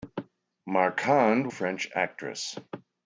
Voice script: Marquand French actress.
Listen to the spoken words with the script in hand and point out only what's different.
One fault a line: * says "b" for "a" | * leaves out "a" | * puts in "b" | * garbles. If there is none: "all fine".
all fine